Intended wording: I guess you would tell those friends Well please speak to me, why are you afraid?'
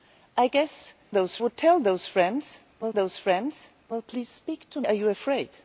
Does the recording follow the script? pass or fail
fail